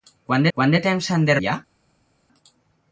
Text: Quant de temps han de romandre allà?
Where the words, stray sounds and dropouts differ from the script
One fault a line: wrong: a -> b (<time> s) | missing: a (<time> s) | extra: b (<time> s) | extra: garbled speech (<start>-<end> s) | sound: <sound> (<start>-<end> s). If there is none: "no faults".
extra: quant (0.6 s)
missing: romandre (1.4 s)